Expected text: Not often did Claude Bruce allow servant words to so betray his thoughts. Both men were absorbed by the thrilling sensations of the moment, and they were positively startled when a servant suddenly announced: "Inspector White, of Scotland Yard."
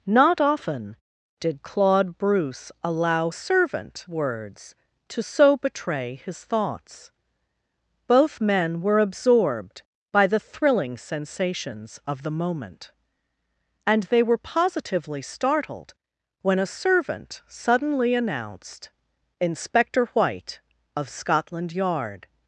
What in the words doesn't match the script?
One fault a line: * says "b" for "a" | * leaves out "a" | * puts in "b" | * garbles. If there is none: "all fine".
all fine